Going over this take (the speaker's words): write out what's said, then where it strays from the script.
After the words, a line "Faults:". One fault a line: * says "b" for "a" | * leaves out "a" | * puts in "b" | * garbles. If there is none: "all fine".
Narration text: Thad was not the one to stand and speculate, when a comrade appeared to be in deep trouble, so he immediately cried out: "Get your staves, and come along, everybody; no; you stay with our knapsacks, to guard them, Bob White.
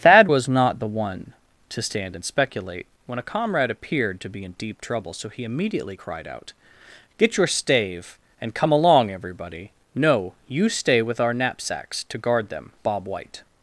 Thad was not the one to stand and speculate, when a comrade appeared to be in deep trouble, so he immediately cried out: "Get your stave, and come along, everybody; no; you stay with our knapsacks, to guard them, Bob White.
Faults:
* says "stave" for "staves"